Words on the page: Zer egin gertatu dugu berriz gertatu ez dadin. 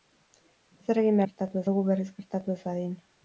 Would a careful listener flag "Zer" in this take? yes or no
no